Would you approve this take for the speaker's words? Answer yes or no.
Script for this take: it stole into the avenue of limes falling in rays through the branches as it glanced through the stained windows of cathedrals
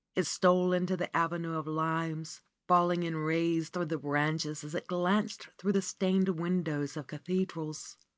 yes